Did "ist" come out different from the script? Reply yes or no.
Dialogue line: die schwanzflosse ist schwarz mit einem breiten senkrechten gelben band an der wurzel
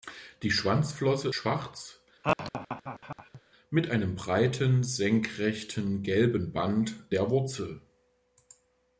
yes